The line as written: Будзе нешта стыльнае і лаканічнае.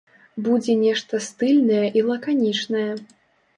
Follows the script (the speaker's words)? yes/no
yes